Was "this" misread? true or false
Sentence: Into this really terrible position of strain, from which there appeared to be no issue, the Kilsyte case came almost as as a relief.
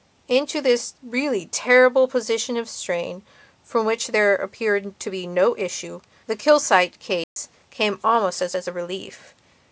false